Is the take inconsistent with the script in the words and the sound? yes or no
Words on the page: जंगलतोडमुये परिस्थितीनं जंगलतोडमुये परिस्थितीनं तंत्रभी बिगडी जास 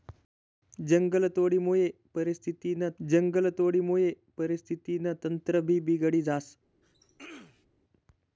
yes